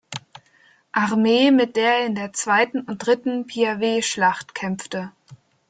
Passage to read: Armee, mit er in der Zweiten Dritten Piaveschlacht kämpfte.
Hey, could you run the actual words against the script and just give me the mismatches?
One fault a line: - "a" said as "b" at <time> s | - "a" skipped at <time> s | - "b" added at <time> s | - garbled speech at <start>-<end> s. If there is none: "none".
- "der" added at 1.8 s
- "und" added at 2.8 s